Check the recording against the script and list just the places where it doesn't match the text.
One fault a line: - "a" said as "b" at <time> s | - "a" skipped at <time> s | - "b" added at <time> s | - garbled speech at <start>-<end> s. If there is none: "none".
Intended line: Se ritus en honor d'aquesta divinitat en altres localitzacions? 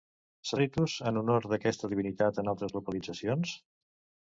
none